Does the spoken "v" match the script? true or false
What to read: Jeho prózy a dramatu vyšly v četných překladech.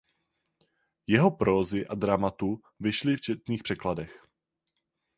true